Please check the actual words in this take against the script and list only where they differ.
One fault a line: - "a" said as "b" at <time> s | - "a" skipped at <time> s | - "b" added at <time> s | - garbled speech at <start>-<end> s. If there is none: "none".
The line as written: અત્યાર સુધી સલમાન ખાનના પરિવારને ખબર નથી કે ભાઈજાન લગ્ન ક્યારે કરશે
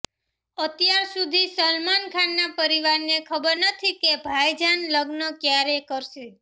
none